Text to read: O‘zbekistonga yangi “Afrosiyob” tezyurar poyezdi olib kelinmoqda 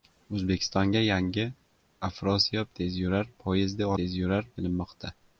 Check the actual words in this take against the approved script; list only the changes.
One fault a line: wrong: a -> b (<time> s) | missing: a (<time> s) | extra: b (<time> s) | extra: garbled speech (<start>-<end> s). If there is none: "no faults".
wrong: olib -> tezyurar (4.0 s)